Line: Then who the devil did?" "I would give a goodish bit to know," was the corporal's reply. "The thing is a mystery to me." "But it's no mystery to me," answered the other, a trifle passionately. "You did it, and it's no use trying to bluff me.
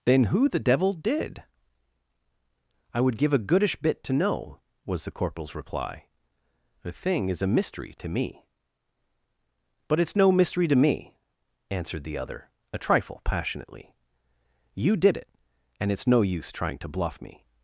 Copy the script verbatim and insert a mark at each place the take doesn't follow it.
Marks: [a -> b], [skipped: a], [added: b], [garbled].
Then who the devil did?" "I would give a goodish bit to know," was the corporal's reply. "The thing is a mystery to me." "But it's no mystery to me," answered the other, a trifle passionately. "You did it, and it's no use trying to bluff me.